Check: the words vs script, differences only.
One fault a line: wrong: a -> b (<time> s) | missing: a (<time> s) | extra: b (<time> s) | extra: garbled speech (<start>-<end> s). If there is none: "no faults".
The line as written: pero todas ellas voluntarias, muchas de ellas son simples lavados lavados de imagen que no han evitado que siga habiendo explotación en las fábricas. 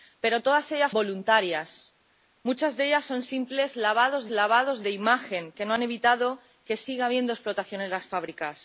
no faults